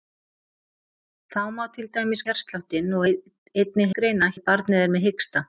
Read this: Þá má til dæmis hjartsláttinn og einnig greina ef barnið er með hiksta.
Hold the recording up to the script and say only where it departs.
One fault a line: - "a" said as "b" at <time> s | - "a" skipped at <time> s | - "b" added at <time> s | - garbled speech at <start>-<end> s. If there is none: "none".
none